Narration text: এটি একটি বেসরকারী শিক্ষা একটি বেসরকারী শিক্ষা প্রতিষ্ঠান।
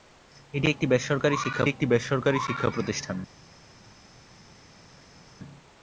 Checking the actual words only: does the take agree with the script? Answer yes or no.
yes